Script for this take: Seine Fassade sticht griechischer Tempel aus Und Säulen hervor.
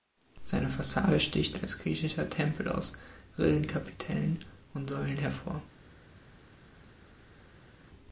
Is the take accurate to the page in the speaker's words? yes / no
no